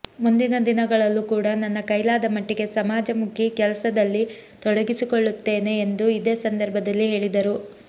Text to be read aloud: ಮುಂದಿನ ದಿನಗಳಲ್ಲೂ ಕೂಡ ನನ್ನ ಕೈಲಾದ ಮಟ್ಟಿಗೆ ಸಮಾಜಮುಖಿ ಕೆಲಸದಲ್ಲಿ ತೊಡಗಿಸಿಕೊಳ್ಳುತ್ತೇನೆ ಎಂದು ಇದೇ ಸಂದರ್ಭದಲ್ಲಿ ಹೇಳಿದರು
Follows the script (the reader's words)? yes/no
yes